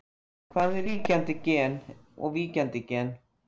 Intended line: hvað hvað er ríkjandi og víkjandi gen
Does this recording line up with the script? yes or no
no